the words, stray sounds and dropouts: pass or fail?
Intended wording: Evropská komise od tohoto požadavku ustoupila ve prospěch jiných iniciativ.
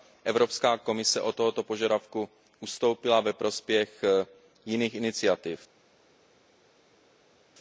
pass